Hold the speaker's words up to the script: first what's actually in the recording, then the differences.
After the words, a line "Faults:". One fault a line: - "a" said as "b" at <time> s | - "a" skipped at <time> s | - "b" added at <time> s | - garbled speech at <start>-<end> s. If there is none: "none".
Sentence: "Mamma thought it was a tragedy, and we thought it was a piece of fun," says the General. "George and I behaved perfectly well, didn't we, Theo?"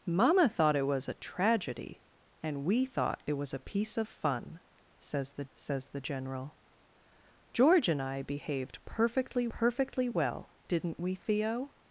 "Mamma thought it was a tragedy, and we thought it was a piece of fun," says the says the General. "George and I behaved perfectly perfectly well, didn't we, Theo?"
Faults:
- "says the" added at 5.5 s
- "perfectly" added at 9.5 s